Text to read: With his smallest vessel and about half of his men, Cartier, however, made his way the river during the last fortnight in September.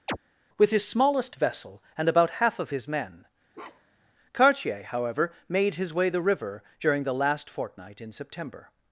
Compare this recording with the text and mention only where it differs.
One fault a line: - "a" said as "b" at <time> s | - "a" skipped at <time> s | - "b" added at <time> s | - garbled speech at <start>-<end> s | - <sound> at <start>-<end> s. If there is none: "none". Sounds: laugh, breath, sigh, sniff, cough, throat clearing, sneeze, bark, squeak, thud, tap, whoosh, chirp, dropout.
- chirp at 0.1-0.2 s
- bark at 3.5-4.1 s